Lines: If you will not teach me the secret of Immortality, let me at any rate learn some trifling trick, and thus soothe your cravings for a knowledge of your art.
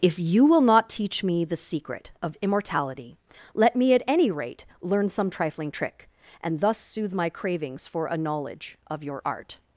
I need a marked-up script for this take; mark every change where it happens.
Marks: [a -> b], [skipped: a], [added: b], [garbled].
If you will not teach me the secret of Immortality, let me at any rate learn some trifling trick, and thus soothe [your -> my] cravings for a knowledge of your art.